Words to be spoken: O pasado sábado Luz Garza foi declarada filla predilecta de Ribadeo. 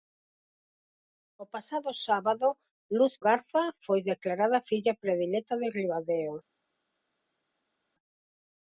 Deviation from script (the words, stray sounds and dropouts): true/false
false